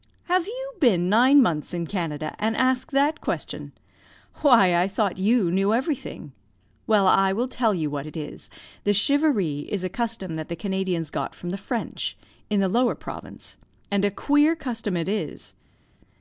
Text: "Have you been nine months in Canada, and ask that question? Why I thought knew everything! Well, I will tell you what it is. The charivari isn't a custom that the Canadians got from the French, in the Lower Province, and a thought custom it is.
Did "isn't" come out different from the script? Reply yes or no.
yes